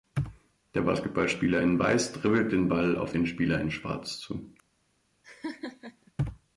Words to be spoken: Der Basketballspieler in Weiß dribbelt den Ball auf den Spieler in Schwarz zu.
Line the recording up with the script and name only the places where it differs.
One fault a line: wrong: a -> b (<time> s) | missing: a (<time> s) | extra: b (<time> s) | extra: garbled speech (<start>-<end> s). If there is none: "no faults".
no faults